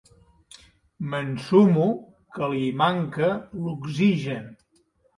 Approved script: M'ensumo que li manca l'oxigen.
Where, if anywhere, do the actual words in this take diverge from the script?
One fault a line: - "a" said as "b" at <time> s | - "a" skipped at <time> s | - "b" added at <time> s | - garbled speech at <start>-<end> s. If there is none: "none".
none